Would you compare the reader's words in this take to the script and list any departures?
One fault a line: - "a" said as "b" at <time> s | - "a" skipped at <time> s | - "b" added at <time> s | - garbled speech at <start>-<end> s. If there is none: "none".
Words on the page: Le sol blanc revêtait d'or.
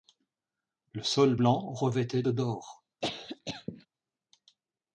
none